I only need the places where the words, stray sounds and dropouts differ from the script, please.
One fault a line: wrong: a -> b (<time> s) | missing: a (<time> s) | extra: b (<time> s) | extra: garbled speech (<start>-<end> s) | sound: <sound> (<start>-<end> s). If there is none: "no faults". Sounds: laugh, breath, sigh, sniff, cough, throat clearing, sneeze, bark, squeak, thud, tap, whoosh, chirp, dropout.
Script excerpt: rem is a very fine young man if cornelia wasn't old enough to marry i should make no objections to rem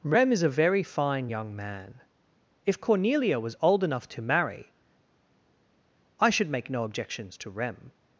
wrong: wasn't -> was (3.4 s)